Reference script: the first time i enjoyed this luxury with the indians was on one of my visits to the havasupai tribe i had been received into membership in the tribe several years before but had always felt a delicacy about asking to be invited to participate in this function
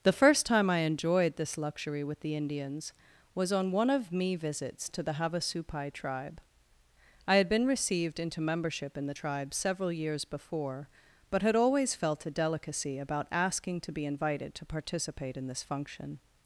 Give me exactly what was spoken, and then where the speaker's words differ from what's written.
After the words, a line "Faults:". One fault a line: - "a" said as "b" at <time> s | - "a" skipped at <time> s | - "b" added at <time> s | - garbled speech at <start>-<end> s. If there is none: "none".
the first time i enjoyed this luxury with the indians was on one of me visits to the havasupai tribe i had been received into membership in the tribe several years before but had always felt a delicacy about asking to be invited to participate in this function
Faults:
- "my" said as "me" at 4.1 s